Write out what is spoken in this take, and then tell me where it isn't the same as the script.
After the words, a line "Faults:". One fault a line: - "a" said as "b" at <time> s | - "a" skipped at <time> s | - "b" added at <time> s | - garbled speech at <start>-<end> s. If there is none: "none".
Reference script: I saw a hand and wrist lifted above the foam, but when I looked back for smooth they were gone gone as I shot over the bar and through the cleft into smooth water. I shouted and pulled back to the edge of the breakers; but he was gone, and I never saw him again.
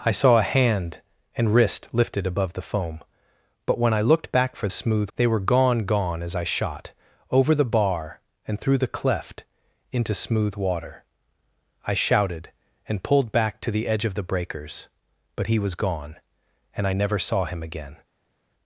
I saw a hand and wrist lifted above the foam, but when I looked back for smooth they were gone gone as I shot over the bar and through the cleft into smooth water. I shouted and pulled back to the edge of the breakers; but he was gone, and I never saw him again.
Faults:
none